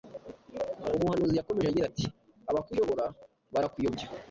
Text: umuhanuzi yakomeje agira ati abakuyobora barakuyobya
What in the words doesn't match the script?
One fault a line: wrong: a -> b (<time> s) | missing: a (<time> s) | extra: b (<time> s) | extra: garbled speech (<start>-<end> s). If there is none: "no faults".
no faults